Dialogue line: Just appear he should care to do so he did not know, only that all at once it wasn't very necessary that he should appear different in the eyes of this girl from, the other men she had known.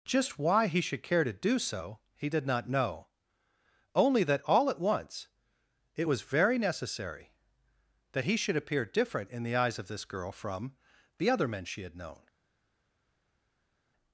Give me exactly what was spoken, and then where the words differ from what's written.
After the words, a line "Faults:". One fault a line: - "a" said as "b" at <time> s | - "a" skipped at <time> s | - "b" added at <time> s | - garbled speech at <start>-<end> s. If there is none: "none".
Just why he should care to do so he did not know, only that all at once it was very necessary that he should appear different in the eyes of this girl from, the other men she had known.
Faults:
- "appear" said as "why" at 0.4 s
- "wasn't" said as "was" at 6.0 s